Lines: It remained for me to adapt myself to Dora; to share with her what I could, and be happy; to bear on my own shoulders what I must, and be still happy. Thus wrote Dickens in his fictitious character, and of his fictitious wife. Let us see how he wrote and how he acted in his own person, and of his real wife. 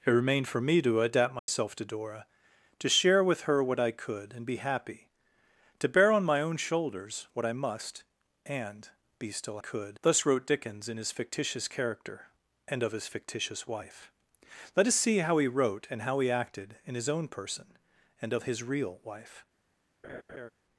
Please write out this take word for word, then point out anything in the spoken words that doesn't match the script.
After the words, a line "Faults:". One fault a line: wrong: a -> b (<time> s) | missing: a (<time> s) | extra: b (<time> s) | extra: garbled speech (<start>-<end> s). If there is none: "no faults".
It remained for me to adapt myself to Dora; to share with her what I could, and be happy; to bear on my own shoulders what I must, and be still could. Thus wrote Dickens in his fictitious character, and of his fictitious wife. Let us see how he wrote and how he acted in his own person, and of his real wife.
Faults:
wrong: happy -> could (9.6 s)